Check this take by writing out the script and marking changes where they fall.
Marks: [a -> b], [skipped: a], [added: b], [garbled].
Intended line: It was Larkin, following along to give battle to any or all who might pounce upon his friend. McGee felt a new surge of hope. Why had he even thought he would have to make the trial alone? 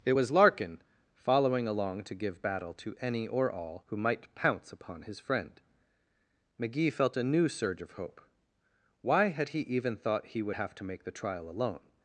It was Larkin, following along to give battle to any or all who might pounce upon his friend. McGee felt a new surge of hope. Why had he even thought he would have to make the trial alone?